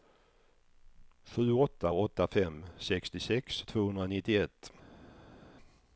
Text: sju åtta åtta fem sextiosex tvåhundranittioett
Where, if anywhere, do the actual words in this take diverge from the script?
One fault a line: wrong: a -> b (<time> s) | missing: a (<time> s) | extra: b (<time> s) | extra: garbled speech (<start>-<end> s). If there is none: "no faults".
no faults